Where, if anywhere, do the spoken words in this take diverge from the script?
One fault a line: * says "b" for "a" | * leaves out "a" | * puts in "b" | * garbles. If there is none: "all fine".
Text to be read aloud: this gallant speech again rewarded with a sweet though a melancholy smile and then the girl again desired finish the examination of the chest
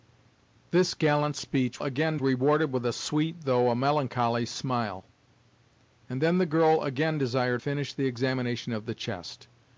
all fine